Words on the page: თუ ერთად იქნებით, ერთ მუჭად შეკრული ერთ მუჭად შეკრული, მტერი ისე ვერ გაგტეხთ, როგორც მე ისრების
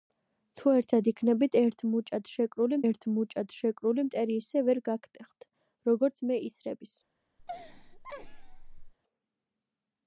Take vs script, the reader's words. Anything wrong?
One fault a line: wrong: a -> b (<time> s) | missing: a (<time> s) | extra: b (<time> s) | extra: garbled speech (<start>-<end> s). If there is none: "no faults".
no faults